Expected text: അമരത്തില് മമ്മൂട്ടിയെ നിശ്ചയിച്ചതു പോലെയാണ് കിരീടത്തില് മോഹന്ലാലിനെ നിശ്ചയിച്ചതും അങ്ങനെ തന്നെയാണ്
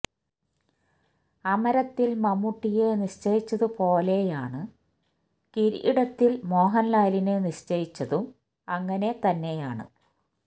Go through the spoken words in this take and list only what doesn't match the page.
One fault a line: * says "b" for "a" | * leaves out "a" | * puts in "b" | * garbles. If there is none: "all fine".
all fine